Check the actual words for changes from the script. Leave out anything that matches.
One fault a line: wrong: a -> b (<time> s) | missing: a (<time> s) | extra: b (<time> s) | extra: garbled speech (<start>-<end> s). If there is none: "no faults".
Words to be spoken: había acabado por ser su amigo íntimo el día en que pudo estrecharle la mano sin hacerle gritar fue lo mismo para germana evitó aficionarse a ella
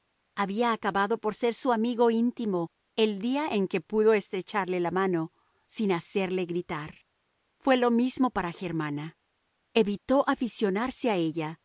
no faults